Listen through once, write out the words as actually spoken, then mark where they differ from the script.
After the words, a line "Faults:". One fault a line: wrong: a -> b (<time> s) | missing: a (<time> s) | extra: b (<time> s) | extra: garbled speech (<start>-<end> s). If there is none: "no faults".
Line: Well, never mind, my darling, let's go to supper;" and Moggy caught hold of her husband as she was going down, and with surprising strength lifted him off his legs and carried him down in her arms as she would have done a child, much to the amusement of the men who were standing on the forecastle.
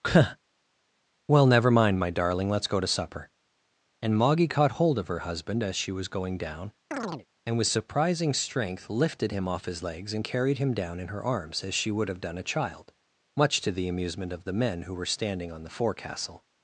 Well, never mind, my darling, let's go to supper;" and Moggy caught hold of her husband as she was going down, and with surprising strength lifted him off his legs and carried him down in her arms as she would have done a child, much to the amusement of the men who were standing on the forecastle.
Faults:
no faults